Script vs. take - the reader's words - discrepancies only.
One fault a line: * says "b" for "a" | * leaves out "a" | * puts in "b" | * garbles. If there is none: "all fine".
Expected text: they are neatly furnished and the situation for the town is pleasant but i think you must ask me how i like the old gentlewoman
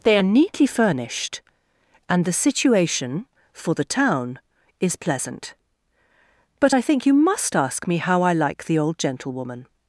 all fine